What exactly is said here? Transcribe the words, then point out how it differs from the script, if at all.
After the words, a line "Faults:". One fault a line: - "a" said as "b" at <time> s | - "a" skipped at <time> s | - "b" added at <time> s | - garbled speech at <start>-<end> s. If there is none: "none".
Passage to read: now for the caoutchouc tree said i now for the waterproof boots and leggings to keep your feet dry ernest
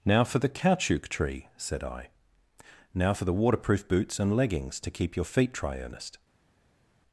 now for the caoutchouc tree said i now for the waterproof boots and leggings to keep your feet dry ernest
Faults:
none